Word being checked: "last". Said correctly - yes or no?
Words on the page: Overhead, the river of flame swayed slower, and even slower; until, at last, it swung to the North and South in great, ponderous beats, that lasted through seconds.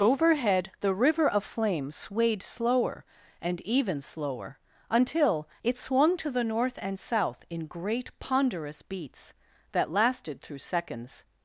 no